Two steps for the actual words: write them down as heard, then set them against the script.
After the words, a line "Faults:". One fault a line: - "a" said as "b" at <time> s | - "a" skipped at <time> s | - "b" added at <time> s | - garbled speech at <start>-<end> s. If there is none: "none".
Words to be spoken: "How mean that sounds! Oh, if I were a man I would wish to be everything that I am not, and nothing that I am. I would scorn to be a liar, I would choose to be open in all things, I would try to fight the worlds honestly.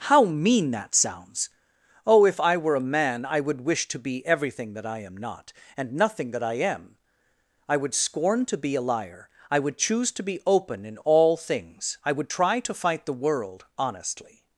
"How mean that sounds! Oh, if I were a man I would wish to be everything that I am not, and nothing that I am. I would scorn to be a liar, I would choose to be open in all things, I would try to fight the world honestly.
Faults:
- "worlds" said as "world" at 13.2 s